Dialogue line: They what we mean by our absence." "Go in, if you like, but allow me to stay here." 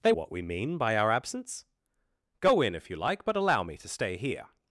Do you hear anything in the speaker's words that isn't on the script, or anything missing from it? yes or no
no